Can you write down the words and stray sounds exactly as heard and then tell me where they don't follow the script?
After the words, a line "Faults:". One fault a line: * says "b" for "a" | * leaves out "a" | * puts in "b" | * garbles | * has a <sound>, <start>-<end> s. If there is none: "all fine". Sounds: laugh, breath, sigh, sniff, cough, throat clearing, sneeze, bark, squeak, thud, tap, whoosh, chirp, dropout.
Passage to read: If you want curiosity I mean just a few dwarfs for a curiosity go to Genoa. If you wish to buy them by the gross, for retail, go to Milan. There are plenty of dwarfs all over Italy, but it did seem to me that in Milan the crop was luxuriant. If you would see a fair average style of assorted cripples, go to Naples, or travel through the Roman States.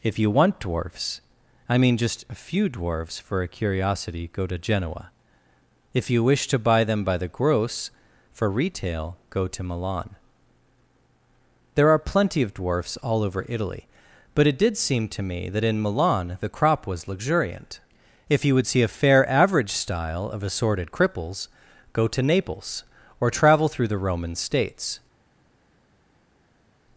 If you want dwarfs I mean just a few dwarfs for a curiosity go to Genoa. If you wish to buy them by the gross, for retail, go to Milan. There are plenty of dwarfs all over Italy, but it did seem to me that in Milan the crop was luxuriant. If you would see a fair average style of assorted cripples, go to Naples, or travel through the Roman States.
Faults:
* says "dwarfs" for "curiosity"